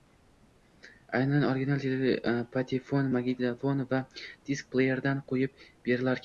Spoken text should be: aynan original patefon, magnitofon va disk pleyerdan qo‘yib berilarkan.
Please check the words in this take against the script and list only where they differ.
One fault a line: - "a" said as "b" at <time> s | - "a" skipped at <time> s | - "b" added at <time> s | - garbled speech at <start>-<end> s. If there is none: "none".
none